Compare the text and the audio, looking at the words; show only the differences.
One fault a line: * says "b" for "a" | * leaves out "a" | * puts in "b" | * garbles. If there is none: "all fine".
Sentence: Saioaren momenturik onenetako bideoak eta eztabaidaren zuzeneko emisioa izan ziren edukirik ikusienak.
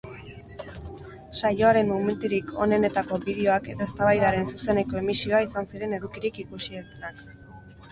all fine